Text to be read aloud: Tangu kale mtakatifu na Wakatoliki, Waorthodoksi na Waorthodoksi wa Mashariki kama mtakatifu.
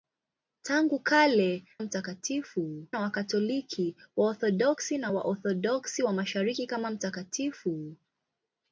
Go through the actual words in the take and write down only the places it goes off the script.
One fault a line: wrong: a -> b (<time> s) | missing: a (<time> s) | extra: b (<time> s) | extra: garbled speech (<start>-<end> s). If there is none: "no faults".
no faults